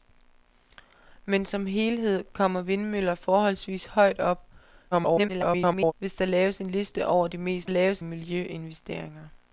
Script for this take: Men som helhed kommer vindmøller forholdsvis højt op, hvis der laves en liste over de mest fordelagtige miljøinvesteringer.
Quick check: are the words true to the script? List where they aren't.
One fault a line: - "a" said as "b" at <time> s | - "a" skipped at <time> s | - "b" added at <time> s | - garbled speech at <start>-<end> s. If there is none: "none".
- garbled speech at 4.9-5.9 s
- "fordelagtige" said as "laves" at 7.7 s